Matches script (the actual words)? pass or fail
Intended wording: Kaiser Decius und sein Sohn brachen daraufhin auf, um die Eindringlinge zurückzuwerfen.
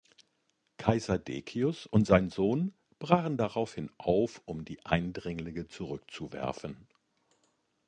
pass